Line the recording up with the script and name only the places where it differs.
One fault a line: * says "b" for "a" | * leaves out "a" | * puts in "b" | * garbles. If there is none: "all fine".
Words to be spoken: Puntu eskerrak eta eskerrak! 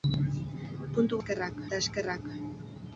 all fine